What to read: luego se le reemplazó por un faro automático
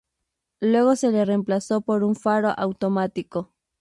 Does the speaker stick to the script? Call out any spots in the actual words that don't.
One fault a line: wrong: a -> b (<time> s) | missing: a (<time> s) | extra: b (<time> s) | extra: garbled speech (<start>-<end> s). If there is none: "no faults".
no faults